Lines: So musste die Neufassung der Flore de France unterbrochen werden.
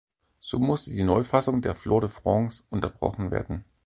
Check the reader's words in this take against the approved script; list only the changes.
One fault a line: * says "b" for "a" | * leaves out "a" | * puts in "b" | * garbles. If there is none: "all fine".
all fine